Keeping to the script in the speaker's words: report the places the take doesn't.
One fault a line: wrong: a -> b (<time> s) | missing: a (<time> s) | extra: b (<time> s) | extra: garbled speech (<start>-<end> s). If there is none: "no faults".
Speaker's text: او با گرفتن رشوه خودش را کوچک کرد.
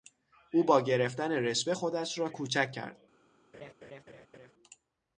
no faults